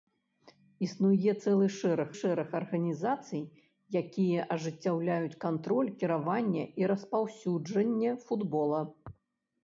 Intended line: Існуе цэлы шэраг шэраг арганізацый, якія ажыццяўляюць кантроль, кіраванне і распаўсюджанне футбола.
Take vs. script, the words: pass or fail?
pass